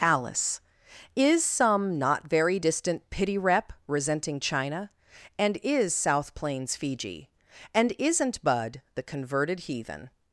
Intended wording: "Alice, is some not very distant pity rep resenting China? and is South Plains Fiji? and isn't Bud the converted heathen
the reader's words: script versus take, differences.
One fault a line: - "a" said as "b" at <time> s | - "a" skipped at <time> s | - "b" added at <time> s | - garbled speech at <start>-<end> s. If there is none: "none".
none